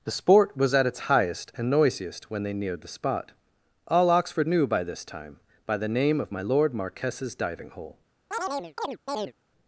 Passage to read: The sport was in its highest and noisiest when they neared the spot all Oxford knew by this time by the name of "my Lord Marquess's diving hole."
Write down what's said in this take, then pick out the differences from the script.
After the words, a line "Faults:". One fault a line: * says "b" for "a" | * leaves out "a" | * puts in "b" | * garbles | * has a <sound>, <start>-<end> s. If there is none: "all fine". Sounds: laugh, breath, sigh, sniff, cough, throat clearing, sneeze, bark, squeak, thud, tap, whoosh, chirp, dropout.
The sport was at its highest and noisiest when they neared the spot all Oxford knew by this time by the name of "my Lord Marquess's diving hole."
Faults:
* says "at" for "in"
* has a chirp, 8.3-9.3 s